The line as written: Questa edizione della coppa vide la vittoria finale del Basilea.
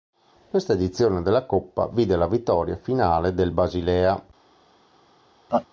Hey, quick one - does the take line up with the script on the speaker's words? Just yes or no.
yes